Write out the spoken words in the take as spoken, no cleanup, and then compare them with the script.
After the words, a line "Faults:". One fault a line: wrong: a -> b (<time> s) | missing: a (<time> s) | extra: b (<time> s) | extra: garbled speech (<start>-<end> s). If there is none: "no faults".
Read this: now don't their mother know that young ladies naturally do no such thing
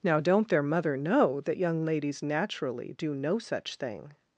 now don't their mother know that young ladies naturally do no such thing
Faults:
no faults